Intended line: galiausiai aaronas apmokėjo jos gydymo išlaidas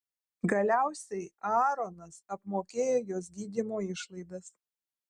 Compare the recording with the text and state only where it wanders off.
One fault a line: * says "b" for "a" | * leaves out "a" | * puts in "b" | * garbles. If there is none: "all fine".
all fine